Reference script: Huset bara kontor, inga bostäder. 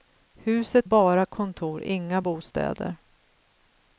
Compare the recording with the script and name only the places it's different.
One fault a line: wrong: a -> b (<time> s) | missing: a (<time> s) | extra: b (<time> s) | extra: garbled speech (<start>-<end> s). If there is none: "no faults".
no faults